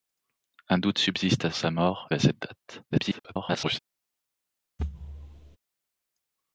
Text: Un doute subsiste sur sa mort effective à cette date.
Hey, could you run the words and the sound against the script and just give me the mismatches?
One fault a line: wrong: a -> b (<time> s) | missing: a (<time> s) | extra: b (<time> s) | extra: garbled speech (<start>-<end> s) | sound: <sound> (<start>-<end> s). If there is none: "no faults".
missing: sur (1.5 s)
missing: effective (2.1 s)
extra: garbled speech (2.9-3.8 s)
sound: thud (4.8-5.6 s)